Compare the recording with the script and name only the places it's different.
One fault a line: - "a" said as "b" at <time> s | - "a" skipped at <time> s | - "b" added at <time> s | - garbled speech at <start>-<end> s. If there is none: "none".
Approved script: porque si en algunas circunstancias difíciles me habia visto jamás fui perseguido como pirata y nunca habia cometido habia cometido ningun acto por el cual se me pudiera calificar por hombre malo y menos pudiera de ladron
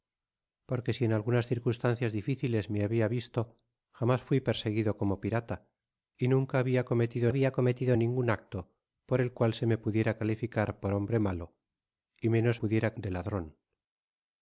none